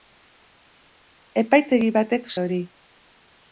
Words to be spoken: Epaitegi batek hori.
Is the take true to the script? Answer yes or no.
yes